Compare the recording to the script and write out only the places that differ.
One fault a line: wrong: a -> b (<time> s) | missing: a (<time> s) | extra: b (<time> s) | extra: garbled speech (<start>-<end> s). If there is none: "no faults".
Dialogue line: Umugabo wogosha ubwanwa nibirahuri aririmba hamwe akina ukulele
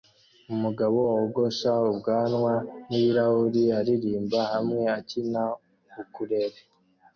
no faults